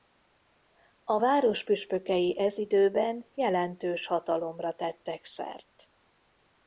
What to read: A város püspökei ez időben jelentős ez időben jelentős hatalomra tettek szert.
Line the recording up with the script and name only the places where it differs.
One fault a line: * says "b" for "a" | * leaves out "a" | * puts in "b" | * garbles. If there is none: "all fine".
* leaves out "ez időben jelentős"